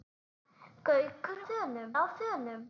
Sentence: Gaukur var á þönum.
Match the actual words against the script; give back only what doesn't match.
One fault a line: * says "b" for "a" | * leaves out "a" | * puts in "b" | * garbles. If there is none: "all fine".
* says "þönum" for "var"